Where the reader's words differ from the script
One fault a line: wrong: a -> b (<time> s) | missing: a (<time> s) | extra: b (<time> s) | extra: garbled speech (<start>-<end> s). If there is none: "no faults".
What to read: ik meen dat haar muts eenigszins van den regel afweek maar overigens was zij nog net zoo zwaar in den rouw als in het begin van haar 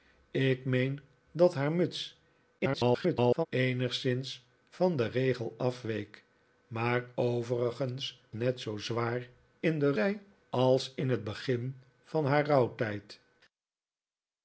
extra: garbled speech (2.6-3.5 s)
missing: was zij nog (8.2 s)
wrong: rouw -> zij (9.9 s)